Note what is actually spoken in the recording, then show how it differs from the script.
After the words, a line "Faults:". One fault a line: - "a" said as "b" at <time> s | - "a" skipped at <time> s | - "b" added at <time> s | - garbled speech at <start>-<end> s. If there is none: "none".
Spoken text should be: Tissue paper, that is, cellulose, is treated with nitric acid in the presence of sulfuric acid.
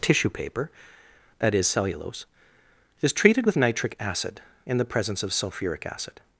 Tissue paper, that is, cellulose, is treated with nitric acid in the presence of sulfuric acid.
Faults:
none